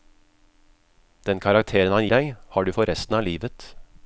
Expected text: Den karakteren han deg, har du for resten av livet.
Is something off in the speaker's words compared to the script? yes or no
no